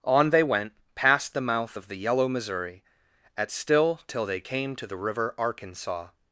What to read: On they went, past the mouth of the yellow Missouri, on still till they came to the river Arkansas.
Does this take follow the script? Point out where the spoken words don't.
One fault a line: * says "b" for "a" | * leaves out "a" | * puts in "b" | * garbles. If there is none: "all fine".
* says "at" for "on"